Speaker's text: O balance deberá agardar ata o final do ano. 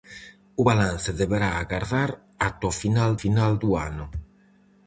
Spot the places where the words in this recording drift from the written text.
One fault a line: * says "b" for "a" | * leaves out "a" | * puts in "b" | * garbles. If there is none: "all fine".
* puts in "final"